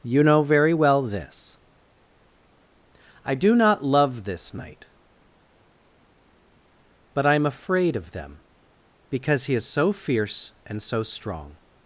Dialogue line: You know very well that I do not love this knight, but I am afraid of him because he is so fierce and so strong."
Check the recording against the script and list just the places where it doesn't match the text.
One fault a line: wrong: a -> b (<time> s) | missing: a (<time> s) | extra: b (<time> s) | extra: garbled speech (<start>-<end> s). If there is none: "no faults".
wrong: that -> this (1.0 s)
wrong: him -> them (8.1 s)